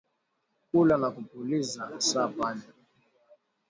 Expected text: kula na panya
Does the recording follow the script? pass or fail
fail